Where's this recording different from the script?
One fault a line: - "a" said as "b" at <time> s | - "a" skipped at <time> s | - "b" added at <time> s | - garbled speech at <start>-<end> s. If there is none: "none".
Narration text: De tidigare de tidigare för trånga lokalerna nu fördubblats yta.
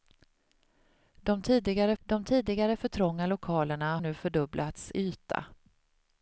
none